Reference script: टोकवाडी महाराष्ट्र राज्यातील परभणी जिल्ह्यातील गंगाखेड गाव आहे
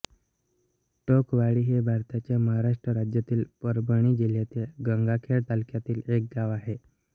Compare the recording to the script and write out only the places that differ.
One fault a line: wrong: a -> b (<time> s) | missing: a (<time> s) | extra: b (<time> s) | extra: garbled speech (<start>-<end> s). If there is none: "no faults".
extra: हे भारताच्या (1.6 s)
extra: तालुक्यातील एक (5.5 s)